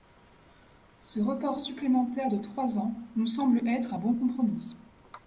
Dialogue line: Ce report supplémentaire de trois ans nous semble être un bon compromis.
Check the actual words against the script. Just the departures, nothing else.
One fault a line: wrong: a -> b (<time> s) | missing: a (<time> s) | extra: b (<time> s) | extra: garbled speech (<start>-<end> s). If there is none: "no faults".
no faults